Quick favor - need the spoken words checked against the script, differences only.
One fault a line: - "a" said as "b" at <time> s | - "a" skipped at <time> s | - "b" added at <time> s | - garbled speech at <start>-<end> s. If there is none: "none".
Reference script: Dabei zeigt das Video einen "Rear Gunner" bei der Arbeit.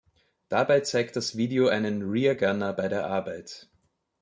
none